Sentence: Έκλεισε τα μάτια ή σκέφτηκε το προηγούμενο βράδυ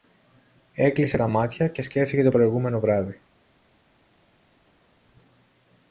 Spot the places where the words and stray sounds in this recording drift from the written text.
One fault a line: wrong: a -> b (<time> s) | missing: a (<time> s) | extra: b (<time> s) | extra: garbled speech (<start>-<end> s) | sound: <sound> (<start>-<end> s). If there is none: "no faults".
wrong: ή -> και (1.7 s)